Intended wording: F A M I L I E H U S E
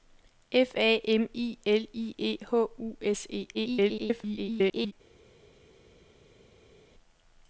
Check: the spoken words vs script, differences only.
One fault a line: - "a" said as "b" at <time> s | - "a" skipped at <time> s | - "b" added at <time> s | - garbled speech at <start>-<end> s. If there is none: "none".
- garbled speech at 3.5-4.9 s